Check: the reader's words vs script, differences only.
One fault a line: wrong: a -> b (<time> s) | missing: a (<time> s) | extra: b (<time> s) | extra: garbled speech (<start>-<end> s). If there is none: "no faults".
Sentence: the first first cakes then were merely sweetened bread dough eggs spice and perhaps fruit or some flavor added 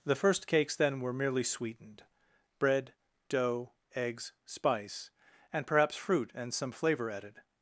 missing: first (0.5 s)
wrong: or -> and (6.4 s)